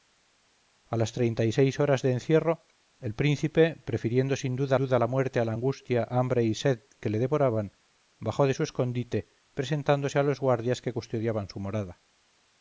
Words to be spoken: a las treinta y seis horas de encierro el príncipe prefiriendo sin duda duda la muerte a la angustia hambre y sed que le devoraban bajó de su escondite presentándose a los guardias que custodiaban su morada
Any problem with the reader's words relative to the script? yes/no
no